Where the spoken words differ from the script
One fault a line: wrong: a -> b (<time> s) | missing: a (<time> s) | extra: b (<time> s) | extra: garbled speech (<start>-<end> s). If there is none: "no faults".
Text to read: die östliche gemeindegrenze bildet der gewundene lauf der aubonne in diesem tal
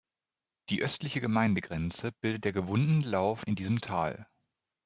missing: der aubonne (3.5 s)